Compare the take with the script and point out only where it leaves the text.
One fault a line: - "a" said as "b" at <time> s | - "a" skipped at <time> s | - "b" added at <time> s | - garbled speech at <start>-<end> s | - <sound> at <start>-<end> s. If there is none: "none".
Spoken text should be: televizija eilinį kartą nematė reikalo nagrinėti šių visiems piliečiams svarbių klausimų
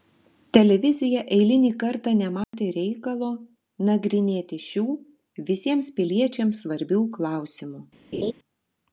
- dropout at 2.4-2.5 s
- laugh at 8.1-8.3 s